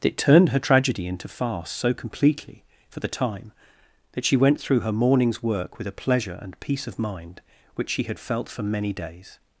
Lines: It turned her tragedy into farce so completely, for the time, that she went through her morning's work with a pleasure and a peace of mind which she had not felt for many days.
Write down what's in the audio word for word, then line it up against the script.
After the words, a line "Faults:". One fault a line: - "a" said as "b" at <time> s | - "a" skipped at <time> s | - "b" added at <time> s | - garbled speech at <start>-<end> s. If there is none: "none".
It turned her tragedy into farce so completely, for the time, that she went through her morning's work with a pleasure and peace of mind which she had felt for many days.
Faults:
- "a" skipped at 6.6 s
- "not" skipped at 8.2 s